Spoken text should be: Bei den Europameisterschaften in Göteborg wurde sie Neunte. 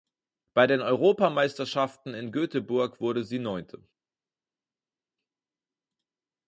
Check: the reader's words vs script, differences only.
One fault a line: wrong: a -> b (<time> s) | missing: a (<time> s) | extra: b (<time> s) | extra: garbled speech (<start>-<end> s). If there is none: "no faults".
no faults